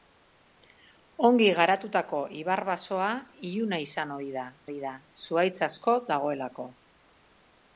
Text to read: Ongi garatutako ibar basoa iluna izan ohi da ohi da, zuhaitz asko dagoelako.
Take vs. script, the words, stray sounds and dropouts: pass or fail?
pass